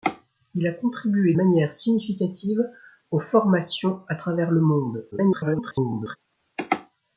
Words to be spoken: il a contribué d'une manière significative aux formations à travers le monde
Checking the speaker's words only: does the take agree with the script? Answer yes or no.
no